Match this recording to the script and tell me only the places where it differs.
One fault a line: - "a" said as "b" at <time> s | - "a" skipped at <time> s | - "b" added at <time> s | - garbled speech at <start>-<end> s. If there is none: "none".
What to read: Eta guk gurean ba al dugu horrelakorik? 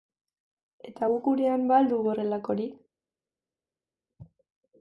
none